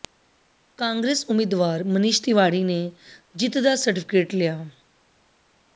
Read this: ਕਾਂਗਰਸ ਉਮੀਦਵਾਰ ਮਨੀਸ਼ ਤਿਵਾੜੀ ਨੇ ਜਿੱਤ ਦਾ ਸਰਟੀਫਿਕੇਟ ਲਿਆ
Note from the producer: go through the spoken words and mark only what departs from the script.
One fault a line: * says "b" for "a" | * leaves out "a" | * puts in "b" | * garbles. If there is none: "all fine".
all fine